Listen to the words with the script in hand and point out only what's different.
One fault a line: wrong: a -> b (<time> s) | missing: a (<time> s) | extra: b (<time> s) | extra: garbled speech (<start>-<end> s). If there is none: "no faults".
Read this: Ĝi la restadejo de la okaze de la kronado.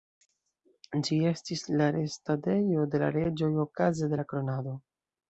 extra: estis (1.3 s)
extra: reĝoj (3.2 s)